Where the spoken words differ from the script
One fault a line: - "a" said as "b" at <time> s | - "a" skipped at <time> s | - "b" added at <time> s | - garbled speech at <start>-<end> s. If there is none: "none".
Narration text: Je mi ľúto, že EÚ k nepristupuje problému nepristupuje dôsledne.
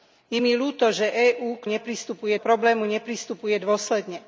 none